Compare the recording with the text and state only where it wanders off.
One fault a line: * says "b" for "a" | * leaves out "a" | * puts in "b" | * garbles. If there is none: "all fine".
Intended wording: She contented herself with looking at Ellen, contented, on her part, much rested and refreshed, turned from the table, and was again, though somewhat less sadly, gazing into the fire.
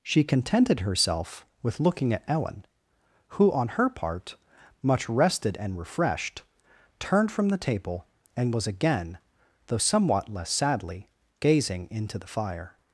* says "who" for "contented"